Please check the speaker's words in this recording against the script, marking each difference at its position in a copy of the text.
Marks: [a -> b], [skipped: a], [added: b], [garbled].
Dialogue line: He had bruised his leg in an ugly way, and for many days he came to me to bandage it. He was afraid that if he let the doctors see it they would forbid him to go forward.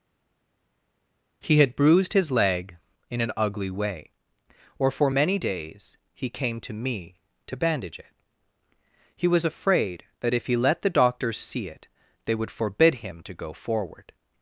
He had bruised his leg in an ugly way, [and -> or] for many days he came to me to bandage it. He was afraid that if he let the doctors see it they would forbid him to go forward.